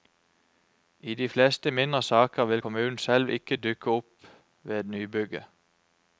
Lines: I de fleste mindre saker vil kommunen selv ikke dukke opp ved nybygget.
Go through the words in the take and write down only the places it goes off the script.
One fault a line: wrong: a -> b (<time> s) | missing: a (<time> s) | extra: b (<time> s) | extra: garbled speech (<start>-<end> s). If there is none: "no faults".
no faults